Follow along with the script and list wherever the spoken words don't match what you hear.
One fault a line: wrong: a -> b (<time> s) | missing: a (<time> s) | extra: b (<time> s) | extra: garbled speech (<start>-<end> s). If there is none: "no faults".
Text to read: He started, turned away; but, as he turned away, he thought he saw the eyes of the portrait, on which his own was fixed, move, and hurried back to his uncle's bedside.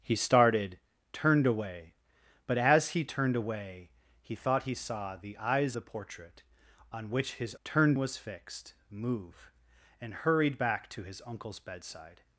missing: of (5.8 s)
wrong: own -> turned (7.6 s)